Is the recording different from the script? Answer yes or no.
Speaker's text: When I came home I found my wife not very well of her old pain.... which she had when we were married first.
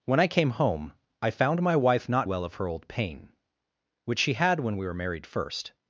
yes